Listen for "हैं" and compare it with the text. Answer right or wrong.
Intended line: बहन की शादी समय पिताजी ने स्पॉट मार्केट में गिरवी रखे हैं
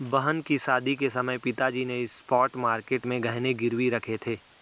wrong